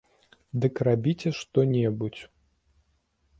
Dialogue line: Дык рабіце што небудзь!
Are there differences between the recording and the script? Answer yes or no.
no